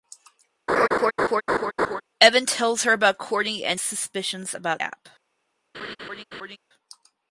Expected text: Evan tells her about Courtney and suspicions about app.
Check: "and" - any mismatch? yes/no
no